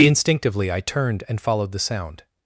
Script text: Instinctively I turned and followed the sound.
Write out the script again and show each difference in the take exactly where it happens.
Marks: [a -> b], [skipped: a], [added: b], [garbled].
Instinctively I turned and followed the sound.